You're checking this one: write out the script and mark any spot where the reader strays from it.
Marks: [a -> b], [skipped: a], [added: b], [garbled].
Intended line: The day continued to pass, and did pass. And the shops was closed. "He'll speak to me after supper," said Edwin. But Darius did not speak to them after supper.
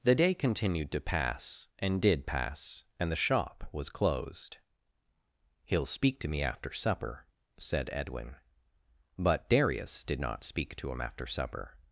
The day continued to pass, and did pass. And the [shops -> shop] was closed. "He'll speak to me after supper," said Edwin. But Darius did not speak to [them -> him] after supper.